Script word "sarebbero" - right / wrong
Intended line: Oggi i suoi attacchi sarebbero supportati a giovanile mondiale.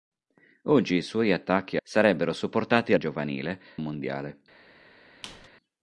right